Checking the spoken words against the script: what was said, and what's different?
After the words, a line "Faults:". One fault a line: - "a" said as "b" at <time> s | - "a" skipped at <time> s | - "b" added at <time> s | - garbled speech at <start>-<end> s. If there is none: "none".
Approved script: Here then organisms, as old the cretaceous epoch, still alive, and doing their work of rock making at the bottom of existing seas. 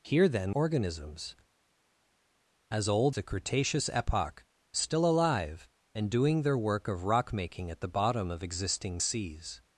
Here then organisms, as old the cretaceous epoch, still alive, and doing their work of rock making at the bottom of existing seas.
Faults:
none